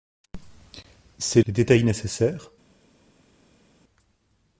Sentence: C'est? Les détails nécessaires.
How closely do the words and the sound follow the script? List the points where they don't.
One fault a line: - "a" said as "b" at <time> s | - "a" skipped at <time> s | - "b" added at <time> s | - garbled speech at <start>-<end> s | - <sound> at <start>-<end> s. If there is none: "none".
none